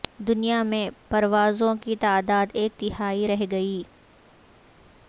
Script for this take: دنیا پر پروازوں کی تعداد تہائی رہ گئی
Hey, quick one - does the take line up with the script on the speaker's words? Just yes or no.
no